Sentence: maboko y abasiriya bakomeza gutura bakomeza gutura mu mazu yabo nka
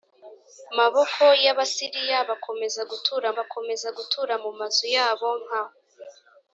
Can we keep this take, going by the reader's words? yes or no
yes